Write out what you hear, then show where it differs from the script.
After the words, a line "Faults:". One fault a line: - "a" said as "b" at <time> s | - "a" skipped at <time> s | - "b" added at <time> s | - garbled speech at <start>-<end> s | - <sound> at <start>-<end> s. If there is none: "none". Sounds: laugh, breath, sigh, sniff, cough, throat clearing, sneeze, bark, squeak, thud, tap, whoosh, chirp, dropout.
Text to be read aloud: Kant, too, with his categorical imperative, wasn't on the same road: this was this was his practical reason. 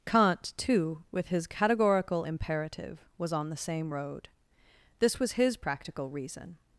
Kant, too, with his categorical imperative, was on the same road: this was his practical reason.
Faults:
- "wasn't" said as "was" at 3.2 s
- "this was" skipped at 5.4 s